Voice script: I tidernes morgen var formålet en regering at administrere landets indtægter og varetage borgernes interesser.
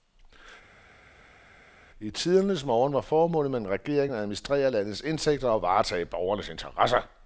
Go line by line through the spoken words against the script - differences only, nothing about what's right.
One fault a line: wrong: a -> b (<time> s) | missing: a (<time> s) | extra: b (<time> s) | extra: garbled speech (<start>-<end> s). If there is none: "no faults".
extra: med (3.5 s)